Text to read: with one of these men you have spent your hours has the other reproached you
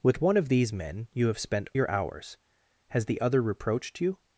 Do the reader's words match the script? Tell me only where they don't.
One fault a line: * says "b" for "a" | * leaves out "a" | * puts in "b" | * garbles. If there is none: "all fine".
all fine